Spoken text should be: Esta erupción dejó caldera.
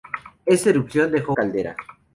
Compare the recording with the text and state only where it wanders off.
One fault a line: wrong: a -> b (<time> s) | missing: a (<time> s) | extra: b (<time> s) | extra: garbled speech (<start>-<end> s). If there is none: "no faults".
no faults